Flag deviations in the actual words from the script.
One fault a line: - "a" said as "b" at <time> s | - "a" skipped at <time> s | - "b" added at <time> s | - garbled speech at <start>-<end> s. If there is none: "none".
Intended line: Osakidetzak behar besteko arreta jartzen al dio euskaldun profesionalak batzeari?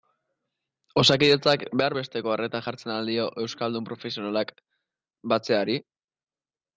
none